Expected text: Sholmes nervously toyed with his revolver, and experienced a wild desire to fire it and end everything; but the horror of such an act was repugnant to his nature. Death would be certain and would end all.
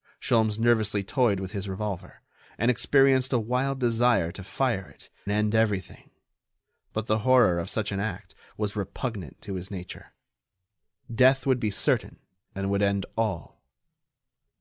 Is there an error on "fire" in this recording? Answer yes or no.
no